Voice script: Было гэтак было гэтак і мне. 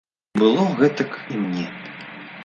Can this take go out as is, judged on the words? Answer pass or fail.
fail